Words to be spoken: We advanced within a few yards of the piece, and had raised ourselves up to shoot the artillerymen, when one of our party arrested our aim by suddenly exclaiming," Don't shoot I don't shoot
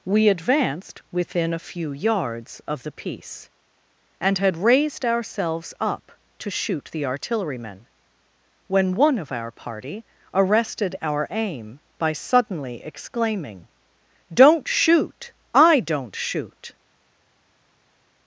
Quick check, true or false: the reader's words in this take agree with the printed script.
true